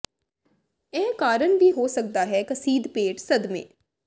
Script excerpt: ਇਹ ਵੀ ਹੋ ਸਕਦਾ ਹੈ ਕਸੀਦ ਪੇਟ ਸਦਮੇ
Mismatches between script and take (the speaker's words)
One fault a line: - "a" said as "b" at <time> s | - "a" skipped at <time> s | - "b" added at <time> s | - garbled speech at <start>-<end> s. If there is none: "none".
- "ਕਾਰਨ" added at 1.1 s